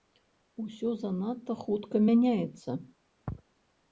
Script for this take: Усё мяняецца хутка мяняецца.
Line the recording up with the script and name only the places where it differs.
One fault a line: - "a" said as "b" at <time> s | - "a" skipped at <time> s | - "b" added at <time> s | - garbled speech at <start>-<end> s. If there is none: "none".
- "мяняецца" said as "занадта" at 1.0 s